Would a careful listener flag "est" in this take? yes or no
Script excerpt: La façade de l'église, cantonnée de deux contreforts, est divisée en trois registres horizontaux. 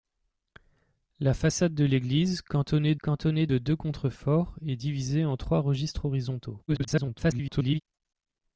no